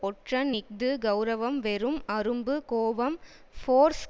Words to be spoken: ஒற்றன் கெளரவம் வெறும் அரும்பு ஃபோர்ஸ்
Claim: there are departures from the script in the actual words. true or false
true